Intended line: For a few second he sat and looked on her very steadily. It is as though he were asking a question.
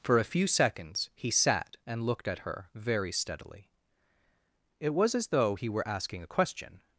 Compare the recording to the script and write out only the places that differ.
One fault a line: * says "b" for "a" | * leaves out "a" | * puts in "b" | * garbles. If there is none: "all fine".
* says "seconds" for "second"
* says "at" for "on"
* says "was" for "is"